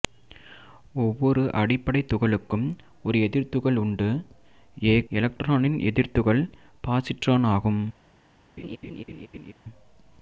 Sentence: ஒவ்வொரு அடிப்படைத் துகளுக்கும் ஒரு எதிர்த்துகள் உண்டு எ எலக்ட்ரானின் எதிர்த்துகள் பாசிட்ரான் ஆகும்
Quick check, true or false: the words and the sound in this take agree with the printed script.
false